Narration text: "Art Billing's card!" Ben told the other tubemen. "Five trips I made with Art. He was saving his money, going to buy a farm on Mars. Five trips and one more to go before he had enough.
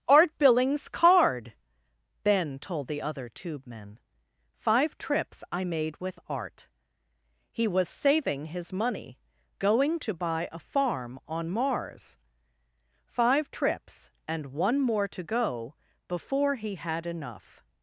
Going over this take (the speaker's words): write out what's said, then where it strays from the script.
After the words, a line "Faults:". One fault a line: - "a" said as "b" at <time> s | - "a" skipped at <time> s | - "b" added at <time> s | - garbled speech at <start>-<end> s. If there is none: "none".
"Art Billing's card!" Ben told the other tubemen. "Five trips I made with Art. He was saving his money, going to buy a farm on Mars. Five trips and one more to go before he had enough.
Faults:
none